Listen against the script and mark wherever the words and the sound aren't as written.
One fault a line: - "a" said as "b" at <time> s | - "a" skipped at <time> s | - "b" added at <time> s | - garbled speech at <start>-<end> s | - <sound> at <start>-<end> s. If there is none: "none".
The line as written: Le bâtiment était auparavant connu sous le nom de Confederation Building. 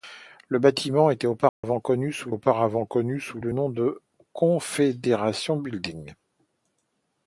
- dropout at 1.5-1.6 s
- "auparavant connu sous" added at 2.3 s